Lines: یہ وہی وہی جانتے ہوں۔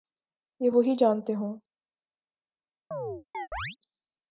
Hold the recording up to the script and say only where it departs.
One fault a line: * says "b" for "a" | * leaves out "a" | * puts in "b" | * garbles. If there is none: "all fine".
* leaves out "وہی"